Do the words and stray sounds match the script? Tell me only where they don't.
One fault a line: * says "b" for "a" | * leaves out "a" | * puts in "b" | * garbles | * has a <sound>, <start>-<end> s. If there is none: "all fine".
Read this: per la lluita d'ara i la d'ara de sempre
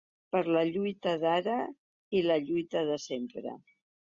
* says "lluita" for "d'ara"